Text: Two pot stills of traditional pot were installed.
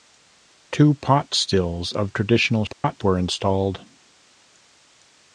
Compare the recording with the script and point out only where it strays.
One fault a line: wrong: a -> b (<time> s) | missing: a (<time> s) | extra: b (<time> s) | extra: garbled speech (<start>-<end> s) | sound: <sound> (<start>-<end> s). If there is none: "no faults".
sound: dropout (2.7-2.8 s)